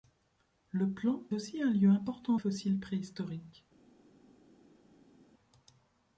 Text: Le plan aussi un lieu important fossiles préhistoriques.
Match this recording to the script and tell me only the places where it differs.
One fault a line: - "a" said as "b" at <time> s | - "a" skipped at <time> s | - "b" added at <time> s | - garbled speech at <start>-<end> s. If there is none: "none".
none